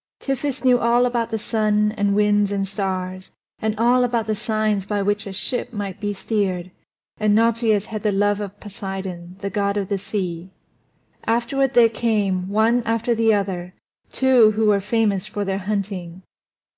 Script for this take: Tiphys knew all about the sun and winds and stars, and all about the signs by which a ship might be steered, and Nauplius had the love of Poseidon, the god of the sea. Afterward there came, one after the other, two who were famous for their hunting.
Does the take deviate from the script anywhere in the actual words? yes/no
no